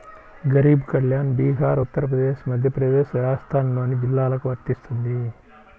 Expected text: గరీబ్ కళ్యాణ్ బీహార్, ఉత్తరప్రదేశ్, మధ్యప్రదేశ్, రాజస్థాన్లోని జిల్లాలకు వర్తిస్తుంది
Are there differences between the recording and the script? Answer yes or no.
no